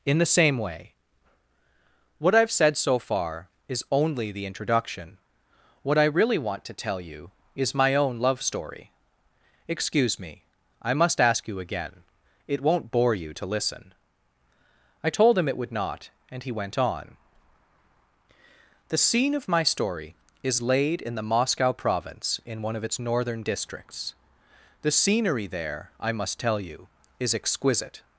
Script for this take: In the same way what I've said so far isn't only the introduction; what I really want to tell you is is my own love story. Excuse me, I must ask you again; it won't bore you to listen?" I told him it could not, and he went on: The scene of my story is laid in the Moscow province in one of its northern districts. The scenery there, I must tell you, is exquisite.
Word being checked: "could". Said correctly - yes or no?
no